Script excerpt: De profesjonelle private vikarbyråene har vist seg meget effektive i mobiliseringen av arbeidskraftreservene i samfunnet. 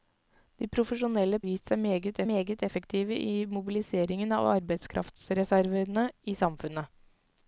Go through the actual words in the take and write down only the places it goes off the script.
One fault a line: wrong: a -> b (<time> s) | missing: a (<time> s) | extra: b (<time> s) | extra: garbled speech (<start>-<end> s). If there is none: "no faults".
missing: private vikarbyråene har (1.4 s)
extra: meget (2.3 s)